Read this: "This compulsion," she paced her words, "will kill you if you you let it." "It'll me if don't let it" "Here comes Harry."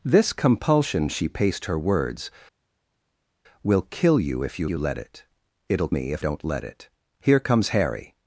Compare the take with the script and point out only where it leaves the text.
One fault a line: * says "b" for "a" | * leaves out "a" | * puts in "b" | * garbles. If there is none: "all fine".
all fine